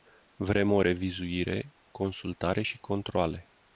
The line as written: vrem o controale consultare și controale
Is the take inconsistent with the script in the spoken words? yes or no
yes